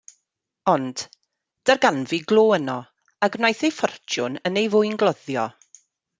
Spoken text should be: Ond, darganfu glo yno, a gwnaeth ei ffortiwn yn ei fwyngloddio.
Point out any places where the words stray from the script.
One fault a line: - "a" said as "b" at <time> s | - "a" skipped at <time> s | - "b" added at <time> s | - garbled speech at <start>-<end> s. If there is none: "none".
none